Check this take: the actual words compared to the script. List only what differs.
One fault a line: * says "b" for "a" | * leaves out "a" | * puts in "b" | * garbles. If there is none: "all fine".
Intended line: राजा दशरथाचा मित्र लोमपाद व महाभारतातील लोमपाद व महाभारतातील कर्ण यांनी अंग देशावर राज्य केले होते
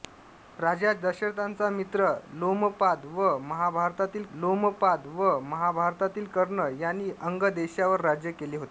all fine